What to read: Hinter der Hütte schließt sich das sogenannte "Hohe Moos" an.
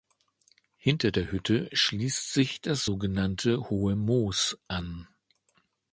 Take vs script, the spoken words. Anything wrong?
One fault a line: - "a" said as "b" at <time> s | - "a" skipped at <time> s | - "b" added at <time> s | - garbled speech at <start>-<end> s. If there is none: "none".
none